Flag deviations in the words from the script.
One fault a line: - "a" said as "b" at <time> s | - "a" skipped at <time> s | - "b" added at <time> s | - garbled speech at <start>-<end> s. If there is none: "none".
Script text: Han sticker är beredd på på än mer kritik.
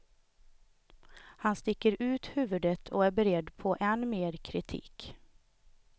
- "ut huvudet och" added at 2.0 s
- "på" skipped at 3.8 s